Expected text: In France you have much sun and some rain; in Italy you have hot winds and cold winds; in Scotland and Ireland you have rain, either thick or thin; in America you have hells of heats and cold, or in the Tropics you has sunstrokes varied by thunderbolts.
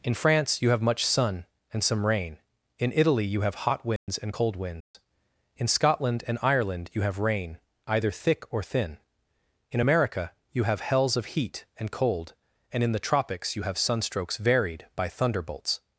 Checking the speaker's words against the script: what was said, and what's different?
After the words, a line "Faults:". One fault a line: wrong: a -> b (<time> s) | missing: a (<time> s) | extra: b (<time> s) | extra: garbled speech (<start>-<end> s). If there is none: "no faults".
In France you have much sun and some rain; in Italy you have hot winds and cold winds; in Scotland and Ireland you have rain, either thick or thin; in America you have hells of heat and cold, and in the Tropics you have sunstrokes varied by thunderbolts.
Faults:
wrong: heats -> heat (11.4 s)
wrong: or -> and (12.7 s)
wrong: has -> have (13.6 s)